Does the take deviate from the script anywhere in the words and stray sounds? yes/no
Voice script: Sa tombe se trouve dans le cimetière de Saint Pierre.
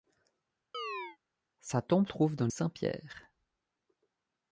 yes